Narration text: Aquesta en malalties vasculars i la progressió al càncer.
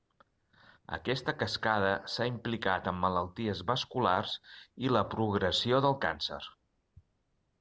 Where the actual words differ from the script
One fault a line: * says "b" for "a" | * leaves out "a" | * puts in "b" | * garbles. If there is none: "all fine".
* puts in "cascada s'ha implicat"
* says "del" for "al"